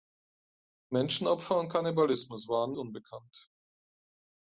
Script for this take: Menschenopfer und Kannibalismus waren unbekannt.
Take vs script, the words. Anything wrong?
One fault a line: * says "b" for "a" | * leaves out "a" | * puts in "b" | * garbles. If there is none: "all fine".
all fine